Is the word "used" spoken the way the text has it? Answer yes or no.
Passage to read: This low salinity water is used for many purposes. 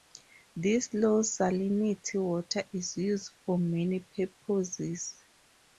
yes